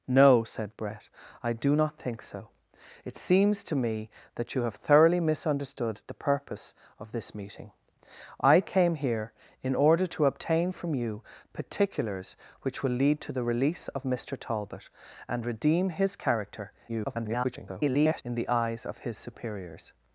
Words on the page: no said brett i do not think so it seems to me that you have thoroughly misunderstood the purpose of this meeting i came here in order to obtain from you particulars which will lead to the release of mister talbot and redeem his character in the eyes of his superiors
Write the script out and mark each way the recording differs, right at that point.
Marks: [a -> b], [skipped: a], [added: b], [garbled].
no said brett i do not think so it seems to me that you have thoroughly misunderstood the purpose of this meeting i came here in order to obtain from you particulars which will lead to the release of mister talbot and redeem his character [garbled] in the eyes of his superiors